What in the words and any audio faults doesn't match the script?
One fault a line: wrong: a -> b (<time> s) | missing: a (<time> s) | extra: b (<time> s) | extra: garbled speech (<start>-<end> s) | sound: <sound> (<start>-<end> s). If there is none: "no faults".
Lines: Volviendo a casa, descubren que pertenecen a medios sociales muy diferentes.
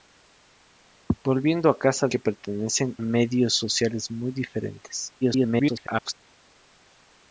missing: descubren (2.1 s)
missing: a (3.0 s)
extra: garbled speech (5.2-6.1 s)